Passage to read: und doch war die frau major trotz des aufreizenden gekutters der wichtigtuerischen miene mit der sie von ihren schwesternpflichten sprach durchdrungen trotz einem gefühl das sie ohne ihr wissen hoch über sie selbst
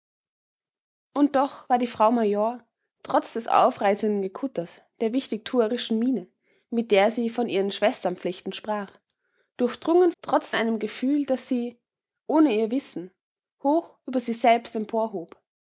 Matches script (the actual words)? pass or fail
pass